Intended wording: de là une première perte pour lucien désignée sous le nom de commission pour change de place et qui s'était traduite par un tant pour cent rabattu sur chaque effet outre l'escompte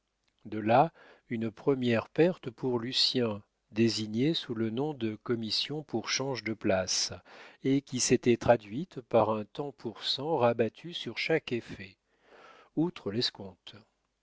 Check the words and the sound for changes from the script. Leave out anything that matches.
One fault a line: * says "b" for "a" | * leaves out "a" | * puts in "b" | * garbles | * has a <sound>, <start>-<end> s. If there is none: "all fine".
all fine